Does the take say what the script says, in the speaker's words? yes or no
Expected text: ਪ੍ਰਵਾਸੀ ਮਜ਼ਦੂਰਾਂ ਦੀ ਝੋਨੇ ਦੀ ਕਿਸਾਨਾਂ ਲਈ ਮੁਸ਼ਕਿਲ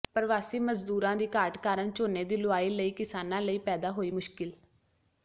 no